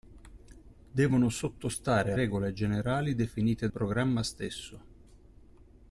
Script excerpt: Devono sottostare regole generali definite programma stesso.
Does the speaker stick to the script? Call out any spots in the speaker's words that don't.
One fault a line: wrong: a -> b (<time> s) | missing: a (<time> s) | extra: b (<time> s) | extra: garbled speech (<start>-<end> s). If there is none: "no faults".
no faults